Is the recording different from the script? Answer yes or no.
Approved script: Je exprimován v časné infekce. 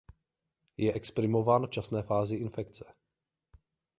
yes